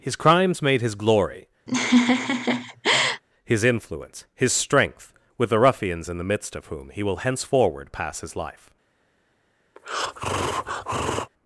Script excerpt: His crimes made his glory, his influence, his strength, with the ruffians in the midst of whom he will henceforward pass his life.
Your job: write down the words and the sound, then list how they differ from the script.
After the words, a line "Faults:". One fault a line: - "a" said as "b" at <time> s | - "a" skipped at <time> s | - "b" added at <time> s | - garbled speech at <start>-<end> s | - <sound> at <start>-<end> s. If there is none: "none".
His crimes made his glory, his influence, his strength, with the ruffians in the midst of whom he will henceforward pass his life.
Faults:
- laugh at 1.7-3.2 s
- breath at 9.8-11.3 s